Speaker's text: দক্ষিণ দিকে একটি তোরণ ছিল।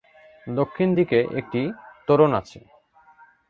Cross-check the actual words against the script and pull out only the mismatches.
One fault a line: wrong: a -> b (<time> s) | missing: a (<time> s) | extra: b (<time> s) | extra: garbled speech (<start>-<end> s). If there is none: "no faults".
wrong: ছিল -> আছে (2.3 s)